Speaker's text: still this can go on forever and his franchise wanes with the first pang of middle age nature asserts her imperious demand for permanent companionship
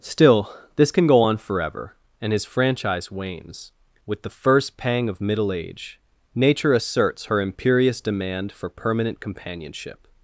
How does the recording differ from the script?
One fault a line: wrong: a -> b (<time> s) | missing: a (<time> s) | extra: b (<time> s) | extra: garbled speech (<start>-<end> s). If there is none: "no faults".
no faults